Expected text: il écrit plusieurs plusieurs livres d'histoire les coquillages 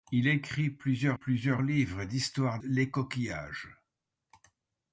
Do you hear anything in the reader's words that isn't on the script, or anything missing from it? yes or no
no